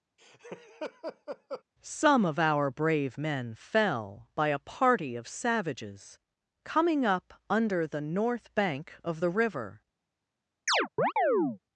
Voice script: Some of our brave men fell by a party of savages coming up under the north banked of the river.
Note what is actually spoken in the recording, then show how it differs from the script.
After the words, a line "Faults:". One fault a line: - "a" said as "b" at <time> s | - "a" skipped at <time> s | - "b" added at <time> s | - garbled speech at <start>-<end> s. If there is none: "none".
Some of our brave men fell by a party of savages coming up under the north bank of the river.
Faults:
- "banked" said as "bank" at 8.5 s